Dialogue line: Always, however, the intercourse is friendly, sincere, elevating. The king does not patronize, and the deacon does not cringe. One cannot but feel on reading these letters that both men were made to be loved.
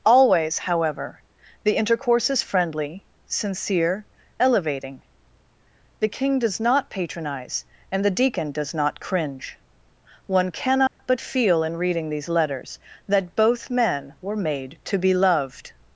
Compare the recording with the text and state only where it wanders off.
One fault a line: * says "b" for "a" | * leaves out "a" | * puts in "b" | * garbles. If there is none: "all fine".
* says "in" for "on"